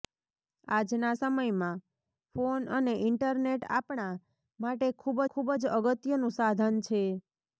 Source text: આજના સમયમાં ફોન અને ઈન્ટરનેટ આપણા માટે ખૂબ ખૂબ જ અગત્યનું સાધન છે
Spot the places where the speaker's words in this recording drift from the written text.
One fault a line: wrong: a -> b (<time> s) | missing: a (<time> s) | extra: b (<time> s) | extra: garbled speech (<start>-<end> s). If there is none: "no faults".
no faults